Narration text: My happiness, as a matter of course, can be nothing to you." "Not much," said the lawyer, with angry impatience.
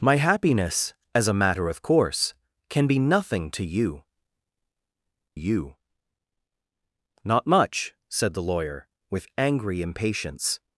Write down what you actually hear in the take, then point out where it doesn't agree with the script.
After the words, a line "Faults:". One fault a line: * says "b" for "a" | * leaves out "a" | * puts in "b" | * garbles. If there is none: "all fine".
My happiness, as a matter of course, can be nothing to you you." "Not much," said the lawyer, with angry impatience.
Faults:
* puts in "you"